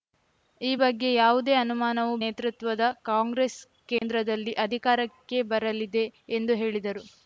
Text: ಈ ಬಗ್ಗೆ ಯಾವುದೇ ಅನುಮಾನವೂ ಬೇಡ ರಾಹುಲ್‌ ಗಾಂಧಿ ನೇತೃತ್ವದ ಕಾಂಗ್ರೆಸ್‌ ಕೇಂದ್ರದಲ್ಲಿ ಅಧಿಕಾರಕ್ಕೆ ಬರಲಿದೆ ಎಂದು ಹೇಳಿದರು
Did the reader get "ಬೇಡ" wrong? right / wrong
wrong